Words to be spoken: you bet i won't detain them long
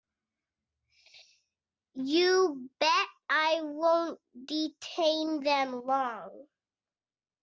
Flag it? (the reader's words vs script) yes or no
no